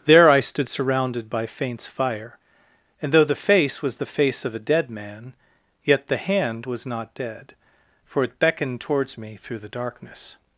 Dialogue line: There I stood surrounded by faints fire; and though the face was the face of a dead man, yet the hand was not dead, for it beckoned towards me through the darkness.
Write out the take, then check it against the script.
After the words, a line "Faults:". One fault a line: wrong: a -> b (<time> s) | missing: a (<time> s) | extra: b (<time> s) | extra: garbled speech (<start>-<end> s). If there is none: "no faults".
There I stood surrounded by faints fire; and though the face was the face of a dead man, yet the hand was not dead, for it beckoned towards me through the darkness.
Faults:
no faults